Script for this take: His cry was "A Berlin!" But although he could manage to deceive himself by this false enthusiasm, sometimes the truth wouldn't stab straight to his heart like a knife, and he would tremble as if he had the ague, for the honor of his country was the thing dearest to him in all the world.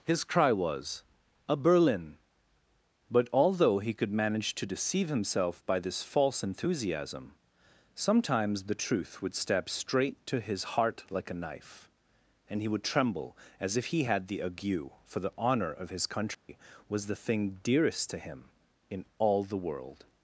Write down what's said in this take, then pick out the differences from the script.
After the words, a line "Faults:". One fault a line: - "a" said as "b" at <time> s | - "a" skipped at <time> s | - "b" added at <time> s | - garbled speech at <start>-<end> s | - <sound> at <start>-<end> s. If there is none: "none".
His cry was "A Berlin!" But although he could manage to deceive himself by this false enthusiasm, sometimes the truth would stab straight to his heart like a knife, and he would tremble as if he had the ague, for the honor of his country was the thing dearest to him in all the world.
Faults:
- "wouldn't" said as "would" at 9.2 s
- dropout at 16.3-16.5 s